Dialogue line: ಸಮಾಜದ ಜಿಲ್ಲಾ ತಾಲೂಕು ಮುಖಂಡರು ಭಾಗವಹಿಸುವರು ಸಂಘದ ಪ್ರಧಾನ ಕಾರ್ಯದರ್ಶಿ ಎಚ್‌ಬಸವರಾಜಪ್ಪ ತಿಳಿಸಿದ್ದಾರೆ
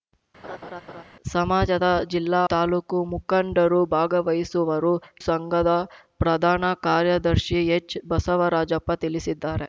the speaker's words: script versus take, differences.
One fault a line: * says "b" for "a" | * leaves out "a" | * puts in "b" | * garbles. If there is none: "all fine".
all fine